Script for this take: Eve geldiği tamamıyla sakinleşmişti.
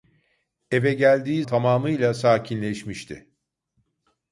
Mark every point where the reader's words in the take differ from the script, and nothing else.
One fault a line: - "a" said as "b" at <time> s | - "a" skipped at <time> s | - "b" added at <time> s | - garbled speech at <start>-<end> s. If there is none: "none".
none